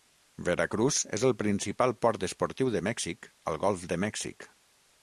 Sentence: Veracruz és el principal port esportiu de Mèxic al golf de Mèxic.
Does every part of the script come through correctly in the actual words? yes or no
yes